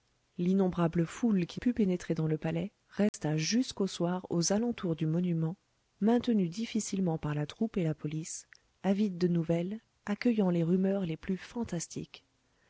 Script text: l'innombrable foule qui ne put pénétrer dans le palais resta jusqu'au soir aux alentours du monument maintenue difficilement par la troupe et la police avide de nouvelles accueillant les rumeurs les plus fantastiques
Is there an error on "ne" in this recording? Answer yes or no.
yes